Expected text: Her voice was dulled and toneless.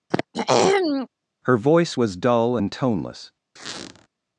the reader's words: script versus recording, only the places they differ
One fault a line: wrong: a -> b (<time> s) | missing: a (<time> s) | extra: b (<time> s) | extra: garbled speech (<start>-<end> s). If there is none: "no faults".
wrong: dulled -> dull (2.2 s)